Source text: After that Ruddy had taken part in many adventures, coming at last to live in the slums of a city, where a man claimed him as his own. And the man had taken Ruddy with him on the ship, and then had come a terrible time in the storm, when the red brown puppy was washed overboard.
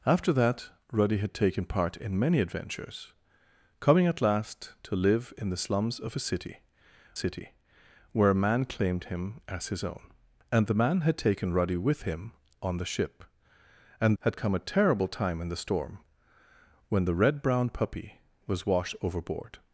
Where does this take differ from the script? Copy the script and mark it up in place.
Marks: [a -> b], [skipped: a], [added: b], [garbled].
After that Ruddy had taken part in many adventures, coming at last to live in the slums of a city, [added: city] where a man claimed him as his own. And the man had taken Ruddy with him on the ship, and [skipped: then] had come a terrible time in the storm, when the red brown puppy was washed overboard.